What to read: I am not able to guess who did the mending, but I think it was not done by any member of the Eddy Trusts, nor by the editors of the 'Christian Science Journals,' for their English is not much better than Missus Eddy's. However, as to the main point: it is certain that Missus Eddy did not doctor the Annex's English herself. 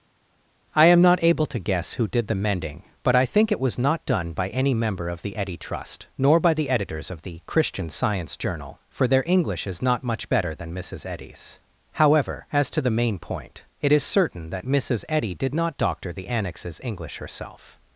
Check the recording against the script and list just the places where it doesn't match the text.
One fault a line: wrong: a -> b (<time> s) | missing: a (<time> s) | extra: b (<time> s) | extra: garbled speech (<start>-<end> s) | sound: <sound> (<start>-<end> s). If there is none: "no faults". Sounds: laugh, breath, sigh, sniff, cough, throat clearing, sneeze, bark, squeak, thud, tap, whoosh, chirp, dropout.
wrong: Trusts -> Trust (5.6 s)
wrong: Journals -> Journal (8.4 s)